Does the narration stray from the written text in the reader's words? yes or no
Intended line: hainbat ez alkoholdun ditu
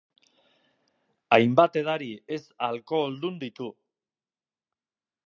yes